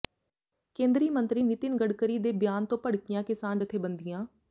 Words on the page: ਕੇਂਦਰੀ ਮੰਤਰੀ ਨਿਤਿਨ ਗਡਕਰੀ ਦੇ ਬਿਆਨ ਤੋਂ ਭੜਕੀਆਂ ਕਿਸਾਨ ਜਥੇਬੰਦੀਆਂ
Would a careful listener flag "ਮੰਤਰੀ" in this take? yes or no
no